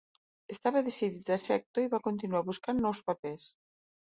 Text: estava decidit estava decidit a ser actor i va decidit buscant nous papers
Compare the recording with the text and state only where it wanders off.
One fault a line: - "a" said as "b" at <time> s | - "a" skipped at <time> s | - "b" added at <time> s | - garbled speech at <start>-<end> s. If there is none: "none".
- "estava decidit" skipped at 1.3 s
- "decidit" said as "continuar" at 2.1 s